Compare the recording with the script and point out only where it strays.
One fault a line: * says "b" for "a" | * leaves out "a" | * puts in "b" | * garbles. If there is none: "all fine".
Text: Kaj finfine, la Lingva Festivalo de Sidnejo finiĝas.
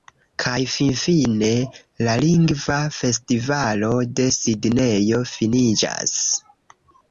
all fine